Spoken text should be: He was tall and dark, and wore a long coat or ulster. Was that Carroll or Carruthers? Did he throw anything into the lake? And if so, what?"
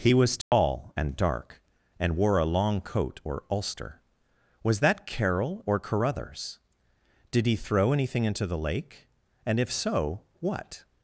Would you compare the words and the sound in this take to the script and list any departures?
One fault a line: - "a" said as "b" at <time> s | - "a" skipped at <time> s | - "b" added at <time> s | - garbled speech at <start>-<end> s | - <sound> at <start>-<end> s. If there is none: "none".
- dropout at 0.4-0.5 s